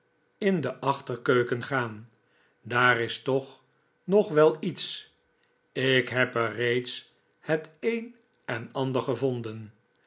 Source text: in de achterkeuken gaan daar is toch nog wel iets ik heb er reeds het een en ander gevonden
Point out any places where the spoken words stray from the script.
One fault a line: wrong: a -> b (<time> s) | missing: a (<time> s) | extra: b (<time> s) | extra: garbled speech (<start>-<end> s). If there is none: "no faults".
no faults